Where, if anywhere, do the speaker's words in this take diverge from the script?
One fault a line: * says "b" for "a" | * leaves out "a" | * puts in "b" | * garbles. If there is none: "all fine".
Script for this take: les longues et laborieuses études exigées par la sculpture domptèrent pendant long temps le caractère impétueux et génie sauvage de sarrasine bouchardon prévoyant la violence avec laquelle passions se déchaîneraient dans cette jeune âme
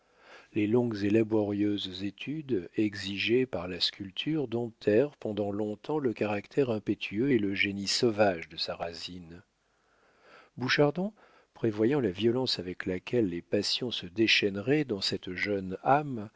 * puts in "le"
* puts in "les"